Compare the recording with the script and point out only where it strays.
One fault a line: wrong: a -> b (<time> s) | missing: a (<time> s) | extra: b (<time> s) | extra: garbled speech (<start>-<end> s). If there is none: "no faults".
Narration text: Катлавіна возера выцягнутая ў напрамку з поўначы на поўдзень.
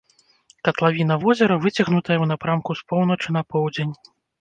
no faults